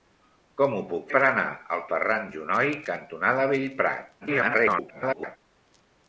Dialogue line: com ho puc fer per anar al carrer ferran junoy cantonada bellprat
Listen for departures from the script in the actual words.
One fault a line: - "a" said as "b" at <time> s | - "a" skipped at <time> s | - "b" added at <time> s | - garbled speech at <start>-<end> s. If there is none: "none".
- "fer" skipped at 1.1 s
- "carrer" skipped at 1.8 s
- garbled speech at 4.2-5.4 s